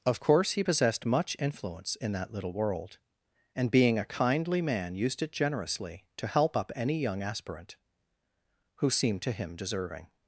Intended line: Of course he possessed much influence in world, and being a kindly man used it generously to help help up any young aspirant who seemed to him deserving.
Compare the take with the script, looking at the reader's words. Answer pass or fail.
fail